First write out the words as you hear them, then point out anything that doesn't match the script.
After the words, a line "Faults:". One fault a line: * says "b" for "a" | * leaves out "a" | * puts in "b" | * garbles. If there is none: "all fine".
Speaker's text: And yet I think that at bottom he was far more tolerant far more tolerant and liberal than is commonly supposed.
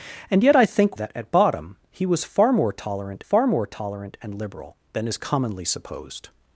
And yet I think that at bottom he was far more tolerant far more tolerant and liberal than is commonly supposed.
Faults:
all fine